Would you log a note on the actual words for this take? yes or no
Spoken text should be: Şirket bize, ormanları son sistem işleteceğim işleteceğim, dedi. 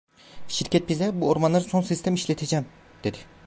yes